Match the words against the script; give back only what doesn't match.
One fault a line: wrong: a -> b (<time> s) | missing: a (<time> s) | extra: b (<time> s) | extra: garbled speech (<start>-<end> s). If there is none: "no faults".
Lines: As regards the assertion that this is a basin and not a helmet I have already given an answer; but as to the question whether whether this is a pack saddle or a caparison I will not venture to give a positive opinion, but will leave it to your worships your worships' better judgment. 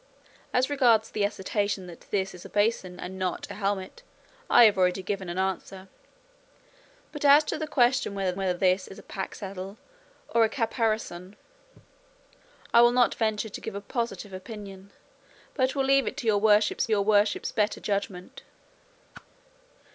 no faults